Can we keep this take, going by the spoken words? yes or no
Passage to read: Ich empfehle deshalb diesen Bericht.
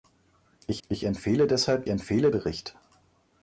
no